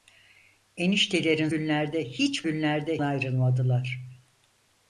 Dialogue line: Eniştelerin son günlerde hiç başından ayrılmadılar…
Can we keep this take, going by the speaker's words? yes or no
no